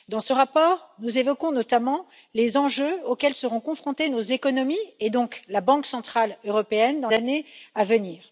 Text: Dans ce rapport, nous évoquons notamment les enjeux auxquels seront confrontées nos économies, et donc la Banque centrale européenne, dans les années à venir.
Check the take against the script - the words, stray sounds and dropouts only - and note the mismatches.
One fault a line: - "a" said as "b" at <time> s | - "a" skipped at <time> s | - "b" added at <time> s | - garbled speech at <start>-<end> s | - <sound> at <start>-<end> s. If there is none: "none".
- "les" skipped at 7.1 s